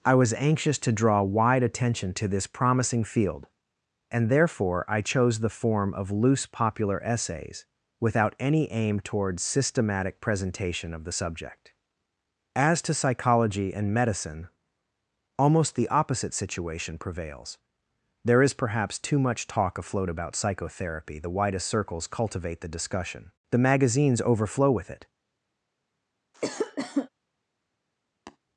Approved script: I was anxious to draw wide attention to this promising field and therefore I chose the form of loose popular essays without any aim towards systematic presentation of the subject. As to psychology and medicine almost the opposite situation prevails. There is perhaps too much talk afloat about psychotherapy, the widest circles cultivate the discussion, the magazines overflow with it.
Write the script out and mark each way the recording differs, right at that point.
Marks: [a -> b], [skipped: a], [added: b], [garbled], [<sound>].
I was anxious to draw wide attention to this promising field and therefore I chose the form of loose popular essays without any aim towards systematic presentation of the subject. As to psychology and medicine almost the opposite situation prevails. There is perhaps too much talk afloat about psychotherapy, the widest circles cultivate the discussion, the magazines overflow with it. [cough] [tap]